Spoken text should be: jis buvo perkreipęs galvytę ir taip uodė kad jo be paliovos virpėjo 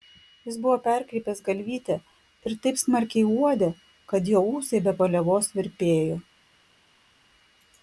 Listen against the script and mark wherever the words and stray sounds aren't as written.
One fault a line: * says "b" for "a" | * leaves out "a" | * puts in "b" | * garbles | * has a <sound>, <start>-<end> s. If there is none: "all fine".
* puts in "smarkiai"
* puts in "ūsai"